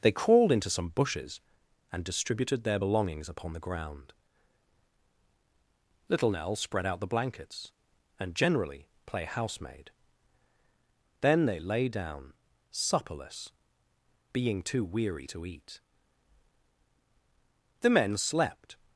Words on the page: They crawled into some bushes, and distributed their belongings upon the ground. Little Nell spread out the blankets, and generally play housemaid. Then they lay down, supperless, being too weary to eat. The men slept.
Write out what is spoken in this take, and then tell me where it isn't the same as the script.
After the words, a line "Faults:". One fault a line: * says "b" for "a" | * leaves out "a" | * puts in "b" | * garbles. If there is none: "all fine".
They crawled into some bushes, and distributed their belongings upon the ground. Little Nell spread out the blankets, and generally play housemaid. Then they lay down, supperless, being too weary to eat. The men slept.
Faults:
all fine